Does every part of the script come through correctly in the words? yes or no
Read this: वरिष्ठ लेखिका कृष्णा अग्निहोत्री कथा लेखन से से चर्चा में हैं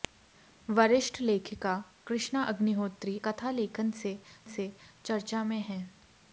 yes